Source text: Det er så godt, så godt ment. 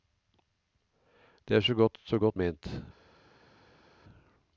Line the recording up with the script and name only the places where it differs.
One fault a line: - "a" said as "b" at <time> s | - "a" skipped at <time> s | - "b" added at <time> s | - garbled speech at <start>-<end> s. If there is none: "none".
none